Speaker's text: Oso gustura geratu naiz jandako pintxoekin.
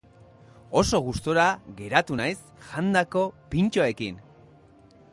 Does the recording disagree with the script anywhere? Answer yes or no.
no